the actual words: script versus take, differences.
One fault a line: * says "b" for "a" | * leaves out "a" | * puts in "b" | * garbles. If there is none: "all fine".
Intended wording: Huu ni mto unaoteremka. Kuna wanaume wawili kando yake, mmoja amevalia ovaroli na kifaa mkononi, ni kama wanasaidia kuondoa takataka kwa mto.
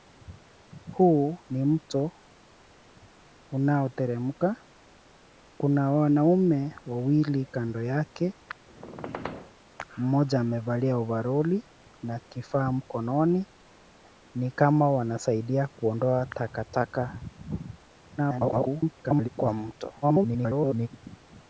* garbles
* garbles